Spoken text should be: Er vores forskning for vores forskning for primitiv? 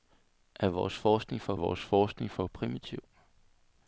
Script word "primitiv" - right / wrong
right